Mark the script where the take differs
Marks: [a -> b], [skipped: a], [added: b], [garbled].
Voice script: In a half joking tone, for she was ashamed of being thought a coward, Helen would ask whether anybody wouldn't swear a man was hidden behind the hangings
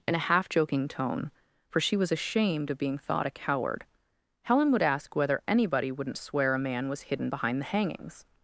In a half joking tone, for she was ashamed of being thought a coward, Helen would ask whether anybody wouldn't swear a man was hidden behind the hangings